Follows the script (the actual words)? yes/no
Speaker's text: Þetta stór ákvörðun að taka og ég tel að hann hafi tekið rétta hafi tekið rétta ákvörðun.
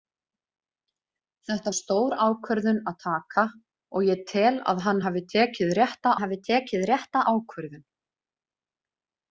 yes